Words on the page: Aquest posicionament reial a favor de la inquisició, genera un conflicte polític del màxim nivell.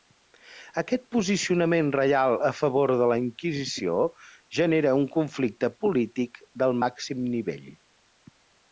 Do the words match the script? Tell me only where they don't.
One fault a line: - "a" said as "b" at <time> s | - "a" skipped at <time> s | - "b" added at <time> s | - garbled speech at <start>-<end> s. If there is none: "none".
none